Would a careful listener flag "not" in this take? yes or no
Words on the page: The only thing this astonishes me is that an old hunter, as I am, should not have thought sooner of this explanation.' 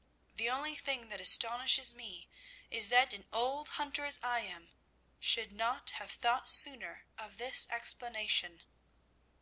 no